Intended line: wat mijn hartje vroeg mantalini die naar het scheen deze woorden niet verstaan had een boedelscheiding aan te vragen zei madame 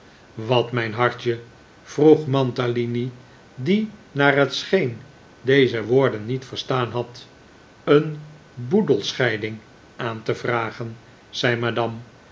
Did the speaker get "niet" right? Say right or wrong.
right